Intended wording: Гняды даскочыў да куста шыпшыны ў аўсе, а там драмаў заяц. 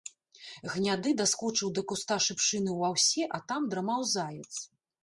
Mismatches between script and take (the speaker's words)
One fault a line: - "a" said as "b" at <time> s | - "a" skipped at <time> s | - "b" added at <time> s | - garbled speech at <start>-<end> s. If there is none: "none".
none